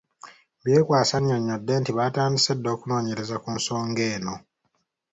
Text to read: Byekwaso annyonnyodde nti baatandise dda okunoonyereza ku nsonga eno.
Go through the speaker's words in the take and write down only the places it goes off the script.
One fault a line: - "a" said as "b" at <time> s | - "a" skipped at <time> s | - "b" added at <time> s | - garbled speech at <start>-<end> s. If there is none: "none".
none